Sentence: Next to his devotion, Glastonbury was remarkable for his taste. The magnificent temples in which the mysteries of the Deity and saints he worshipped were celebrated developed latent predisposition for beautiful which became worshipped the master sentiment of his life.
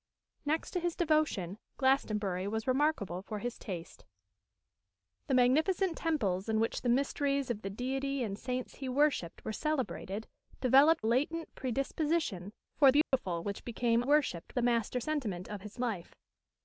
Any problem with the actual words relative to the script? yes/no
no